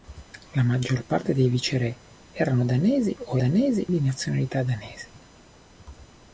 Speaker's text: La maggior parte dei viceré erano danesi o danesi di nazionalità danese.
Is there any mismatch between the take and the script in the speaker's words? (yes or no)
no